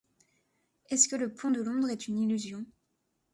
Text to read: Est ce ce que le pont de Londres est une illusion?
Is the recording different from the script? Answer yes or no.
yes